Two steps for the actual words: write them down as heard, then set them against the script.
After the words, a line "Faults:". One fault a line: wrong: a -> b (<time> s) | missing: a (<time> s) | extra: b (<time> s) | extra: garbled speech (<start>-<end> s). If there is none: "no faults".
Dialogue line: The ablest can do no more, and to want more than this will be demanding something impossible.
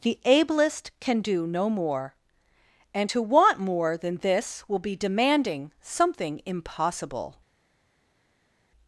The ablest can do no more, and to want more than this will be demanding something impossible.
Faults:
no faults